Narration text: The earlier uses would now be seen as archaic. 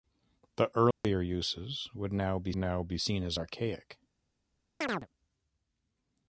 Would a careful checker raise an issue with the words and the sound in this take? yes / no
yes